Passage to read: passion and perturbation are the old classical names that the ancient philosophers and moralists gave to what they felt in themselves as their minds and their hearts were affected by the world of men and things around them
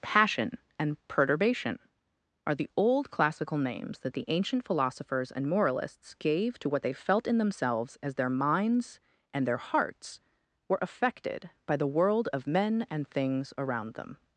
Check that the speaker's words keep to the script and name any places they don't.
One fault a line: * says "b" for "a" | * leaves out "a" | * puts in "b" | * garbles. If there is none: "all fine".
all fine